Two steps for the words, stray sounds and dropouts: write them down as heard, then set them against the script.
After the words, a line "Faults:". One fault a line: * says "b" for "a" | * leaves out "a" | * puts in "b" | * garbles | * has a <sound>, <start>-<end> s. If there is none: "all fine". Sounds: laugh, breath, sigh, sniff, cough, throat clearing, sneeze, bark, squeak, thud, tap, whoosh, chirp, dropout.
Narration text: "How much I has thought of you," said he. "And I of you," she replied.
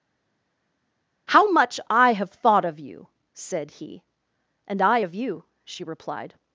"How much I have thought of you," said he. "And I of you," she replied.
Faults:
* says "have" for "has"